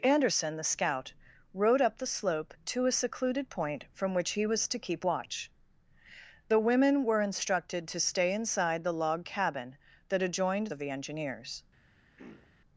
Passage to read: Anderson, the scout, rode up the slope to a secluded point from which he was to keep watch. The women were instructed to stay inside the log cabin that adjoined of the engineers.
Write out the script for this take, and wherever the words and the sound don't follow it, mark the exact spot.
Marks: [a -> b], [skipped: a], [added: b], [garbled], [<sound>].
Anderson, the scout, rode up the slope to a secluded point from which he was to keep watch. The women were instructed to stay inside the log cabin that adjoined of the engineers. [throat clearing]